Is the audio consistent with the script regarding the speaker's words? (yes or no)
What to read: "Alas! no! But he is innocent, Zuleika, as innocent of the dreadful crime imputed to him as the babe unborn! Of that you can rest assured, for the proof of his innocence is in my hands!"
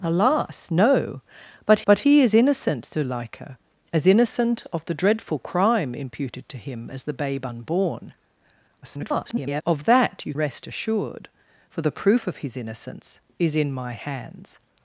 no